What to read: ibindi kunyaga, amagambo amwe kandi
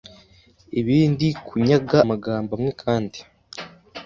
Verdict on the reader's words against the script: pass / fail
pass